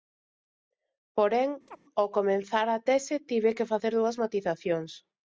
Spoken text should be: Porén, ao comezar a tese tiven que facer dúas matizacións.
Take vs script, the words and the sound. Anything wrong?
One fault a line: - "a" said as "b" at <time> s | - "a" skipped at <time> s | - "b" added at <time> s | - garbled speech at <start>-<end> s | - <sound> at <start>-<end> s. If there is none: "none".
- chirp at 1.7-1.8 s